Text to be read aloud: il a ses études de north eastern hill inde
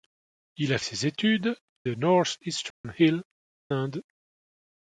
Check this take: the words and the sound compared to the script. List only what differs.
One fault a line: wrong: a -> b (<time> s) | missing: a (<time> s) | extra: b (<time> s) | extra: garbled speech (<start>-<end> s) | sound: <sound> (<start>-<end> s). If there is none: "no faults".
sound: dropout (2.7-2.8 s)